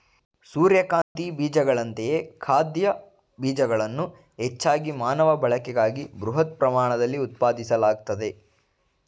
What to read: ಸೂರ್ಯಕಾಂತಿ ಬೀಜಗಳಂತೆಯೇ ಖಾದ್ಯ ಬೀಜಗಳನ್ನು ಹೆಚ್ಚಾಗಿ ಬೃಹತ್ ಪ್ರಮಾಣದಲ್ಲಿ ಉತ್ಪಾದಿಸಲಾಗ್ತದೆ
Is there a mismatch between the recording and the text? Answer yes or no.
yes